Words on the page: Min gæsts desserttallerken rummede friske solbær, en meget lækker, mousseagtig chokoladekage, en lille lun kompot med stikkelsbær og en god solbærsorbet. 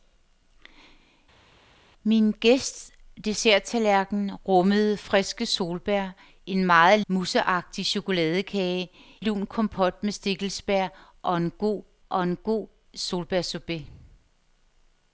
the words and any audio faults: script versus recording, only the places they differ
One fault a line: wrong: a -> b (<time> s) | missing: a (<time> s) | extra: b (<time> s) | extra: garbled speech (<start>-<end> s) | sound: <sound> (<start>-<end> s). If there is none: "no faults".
missing: lækker (7.0 s)
missing: en lille (8.9 s)
extra: og en god (12.1 s)